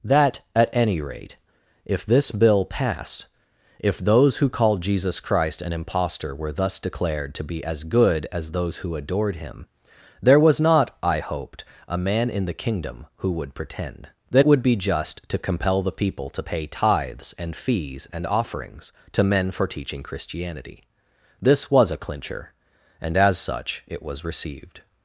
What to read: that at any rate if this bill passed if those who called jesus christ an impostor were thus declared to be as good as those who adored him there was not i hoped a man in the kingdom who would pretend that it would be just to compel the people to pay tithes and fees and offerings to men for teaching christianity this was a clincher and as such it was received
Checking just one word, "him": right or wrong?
right